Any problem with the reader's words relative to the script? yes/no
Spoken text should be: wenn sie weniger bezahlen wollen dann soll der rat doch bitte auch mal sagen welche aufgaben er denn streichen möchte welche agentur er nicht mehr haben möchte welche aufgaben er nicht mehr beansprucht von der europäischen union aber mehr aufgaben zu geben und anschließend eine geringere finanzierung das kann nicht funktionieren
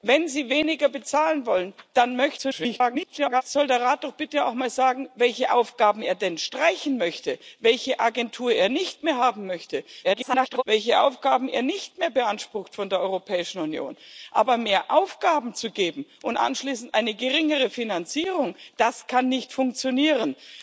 yes